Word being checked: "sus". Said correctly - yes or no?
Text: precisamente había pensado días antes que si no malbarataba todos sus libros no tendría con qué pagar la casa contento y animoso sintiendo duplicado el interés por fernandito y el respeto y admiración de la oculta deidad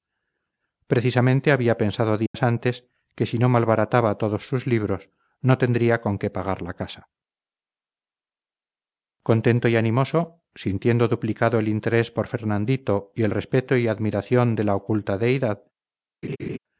yes